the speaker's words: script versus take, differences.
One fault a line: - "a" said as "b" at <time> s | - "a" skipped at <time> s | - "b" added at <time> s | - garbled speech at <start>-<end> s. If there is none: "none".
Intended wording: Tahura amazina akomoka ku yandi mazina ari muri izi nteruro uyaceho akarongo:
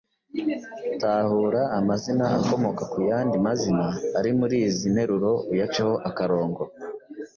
none